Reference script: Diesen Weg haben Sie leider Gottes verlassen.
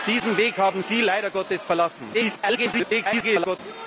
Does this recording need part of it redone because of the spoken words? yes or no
yes